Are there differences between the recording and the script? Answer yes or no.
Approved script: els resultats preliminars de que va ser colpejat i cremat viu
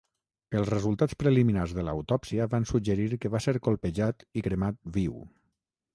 yes